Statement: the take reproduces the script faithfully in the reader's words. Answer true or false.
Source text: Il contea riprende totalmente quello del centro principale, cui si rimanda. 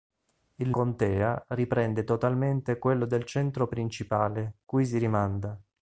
true